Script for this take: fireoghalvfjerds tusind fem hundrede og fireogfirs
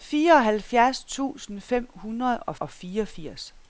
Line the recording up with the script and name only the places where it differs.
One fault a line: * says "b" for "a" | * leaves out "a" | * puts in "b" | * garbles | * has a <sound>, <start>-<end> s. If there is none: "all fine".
* puts in "og"